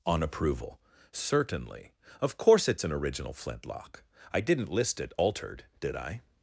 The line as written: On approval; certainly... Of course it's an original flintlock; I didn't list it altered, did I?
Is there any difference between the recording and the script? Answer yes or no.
no